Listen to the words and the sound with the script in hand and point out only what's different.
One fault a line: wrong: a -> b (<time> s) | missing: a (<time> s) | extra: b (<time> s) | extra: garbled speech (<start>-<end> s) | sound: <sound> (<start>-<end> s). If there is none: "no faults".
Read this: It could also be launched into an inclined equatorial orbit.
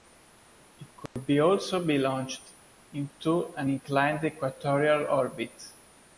sound: dropout (1.1-1.2 s)